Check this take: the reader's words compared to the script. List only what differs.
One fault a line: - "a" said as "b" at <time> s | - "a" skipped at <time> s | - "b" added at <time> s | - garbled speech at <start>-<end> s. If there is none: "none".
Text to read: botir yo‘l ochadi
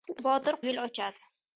none